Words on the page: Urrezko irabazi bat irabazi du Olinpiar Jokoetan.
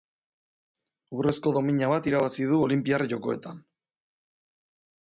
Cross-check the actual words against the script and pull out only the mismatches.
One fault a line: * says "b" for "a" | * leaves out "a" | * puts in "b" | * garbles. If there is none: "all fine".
* says "domina" for "irabazi"